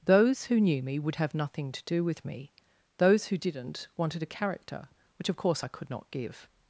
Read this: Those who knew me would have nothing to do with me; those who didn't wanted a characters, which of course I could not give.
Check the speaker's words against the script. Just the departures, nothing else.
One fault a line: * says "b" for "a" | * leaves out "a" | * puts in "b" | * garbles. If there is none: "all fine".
* says "character" for "characters"